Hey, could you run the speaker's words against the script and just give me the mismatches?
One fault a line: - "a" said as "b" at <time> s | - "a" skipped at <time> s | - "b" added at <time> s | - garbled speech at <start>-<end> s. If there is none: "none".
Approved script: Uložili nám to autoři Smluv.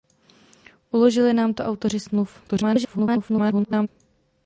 - garbled speech at 2.5-3.9 s